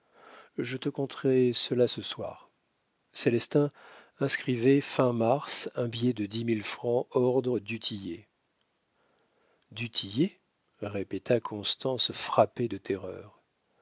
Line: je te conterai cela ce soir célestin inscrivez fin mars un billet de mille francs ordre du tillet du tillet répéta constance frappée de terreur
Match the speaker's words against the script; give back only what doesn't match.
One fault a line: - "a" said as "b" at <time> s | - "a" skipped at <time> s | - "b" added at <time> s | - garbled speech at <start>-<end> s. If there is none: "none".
- "dix" added at 6.3 s